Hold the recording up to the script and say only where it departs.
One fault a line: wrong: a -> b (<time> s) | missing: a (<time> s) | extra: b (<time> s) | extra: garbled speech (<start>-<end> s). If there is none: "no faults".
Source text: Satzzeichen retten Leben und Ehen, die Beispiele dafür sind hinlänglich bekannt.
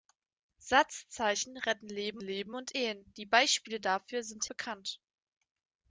extra: Leben (2.2 s)
missing: hinlänglich (4.5 s)